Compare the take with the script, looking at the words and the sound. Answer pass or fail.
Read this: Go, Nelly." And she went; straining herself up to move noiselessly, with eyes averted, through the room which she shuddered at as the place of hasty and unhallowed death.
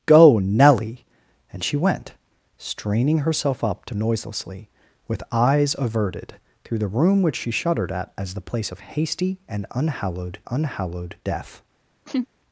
fail